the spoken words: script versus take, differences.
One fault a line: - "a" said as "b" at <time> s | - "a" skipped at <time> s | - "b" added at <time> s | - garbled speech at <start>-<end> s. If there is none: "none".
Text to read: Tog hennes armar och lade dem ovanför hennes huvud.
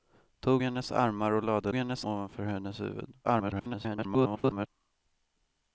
- "dem" said as "hennes" at 1.7 s
- garbled speech at 3.2-4.7 s